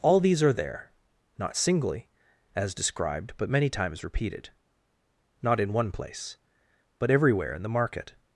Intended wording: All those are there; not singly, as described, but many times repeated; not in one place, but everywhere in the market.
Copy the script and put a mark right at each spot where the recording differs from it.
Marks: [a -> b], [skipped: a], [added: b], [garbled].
All [those -> these] are there; not singly, as described, but many times repeated; not in one place, but everywhere in the market.